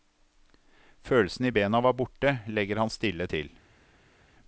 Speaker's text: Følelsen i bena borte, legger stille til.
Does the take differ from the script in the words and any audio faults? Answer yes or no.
yes